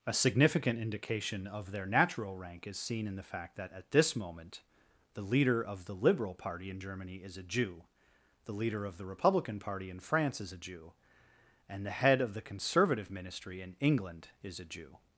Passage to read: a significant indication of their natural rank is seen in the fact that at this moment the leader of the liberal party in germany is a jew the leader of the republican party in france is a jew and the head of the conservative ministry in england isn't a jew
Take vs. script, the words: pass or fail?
fail